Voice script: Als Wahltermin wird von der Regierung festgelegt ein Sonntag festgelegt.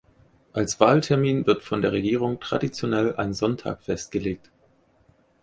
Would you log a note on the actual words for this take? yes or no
yes